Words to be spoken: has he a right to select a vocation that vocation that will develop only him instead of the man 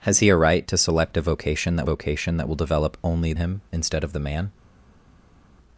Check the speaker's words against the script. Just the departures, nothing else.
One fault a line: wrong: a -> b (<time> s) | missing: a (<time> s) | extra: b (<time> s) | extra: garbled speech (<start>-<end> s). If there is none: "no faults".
no faults